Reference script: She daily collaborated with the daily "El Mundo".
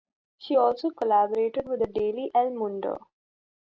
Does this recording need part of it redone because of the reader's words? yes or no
yes